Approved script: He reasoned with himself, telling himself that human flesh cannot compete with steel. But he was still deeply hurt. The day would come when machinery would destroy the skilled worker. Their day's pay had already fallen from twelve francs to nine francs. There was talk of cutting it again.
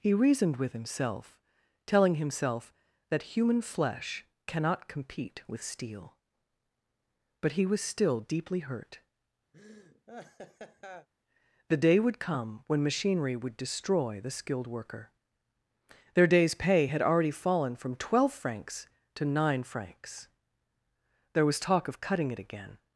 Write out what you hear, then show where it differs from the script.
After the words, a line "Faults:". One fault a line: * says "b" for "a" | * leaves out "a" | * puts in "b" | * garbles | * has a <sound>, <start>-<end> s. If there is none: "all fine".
He reasoned with himself, telling himself that human flesh cannot compete with steel. But he was still deeply hurt. The day would come when machinery would destroy the skilled worker. Their day's pay had already fallen from twelve francs to nine francs. There was talk of cutting it again.
Faults:
* has a laugh, 9.5-11.1 s